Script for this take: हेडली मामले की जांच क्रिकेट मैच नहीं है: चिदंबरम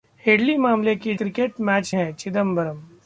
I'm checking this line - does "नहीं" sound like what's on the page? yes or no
no